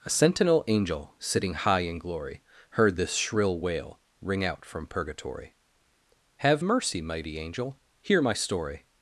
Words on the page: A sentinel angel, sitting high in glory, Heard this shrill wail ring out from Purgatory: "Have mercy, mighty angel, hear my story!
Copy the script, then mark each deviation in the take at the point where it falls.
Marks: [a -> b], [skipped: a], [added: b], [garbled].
A sentinel angel, sitting high in glory, Heard this shrill wail ring out from Purgatory: "Have mercy, mighty angel, hear my story!